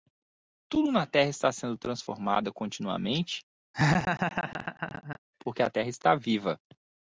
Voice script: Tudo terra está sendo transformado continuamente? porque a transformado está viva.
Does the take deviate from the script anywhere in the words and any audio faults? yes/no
yes